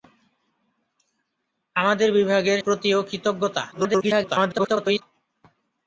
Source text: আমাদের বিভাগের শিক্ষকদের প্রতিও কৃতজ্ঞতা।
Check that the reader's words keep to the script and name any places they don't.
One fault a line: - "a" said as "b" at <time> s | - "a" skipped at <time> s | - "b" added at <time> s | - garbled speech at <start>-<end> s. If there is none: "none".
- "শিক্ষকদের" skipped at 2.6 s
- garbled speech at 3.7-5.0 s